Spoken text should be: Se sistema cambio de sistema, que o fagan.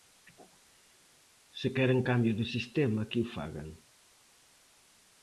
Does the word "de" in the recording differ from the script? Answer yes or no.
no